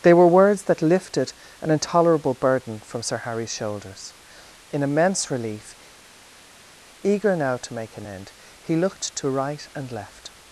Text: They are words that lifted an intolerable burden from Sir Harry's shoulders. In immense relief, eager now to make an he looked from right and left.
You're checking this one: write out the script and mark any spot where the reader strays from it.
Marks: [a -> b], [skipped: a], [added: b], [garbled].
They [are -> were] words that lifted an intolerable burden from Sir Harry's shoulders. In immense relief, eager now to make an [added: end] he looked [from -> to] right and left.